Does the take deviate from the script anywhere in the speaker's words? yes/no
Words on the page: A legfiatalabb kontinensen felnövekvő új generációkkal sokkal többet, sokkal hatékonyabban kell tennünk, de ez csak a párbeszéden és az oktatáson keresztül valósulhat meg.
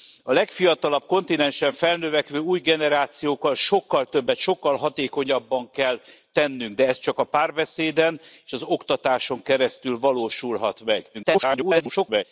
yes